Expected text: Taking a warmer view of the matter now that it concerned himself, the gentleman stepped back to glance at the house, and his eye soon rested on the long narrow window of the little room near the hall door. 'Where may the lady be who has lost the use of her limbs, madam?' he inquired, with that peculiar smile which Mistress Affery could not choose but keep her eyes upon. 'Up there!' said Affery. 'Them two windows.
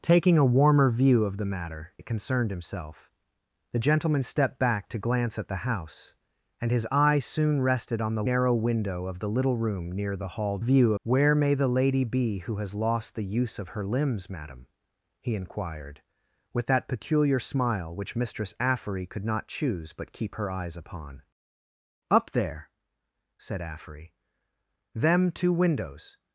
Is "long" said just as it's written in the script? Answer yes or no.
no